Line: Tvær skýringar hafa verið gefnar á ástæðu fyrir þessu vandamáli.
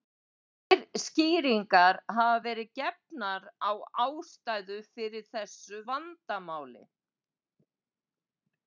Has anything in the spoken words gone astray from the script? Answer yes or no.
no